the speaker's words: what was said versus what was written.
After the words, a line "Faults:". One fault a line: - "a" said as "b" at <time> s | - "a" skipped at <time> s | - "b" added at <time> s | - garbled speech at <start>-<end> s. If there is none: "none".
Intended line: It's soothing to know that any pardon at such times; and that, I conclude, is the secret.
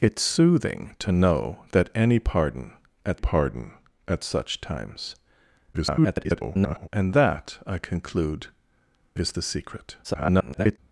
It's soothing to know that any pardon at pardon at such times; [garbled] and that, I conclude, is the secret. [garbled]
Faults:
- "pardon at" added at 3.1 s
- garbled speech at 5.7-6.9 s
- garbled speech at 10.0-10.8 s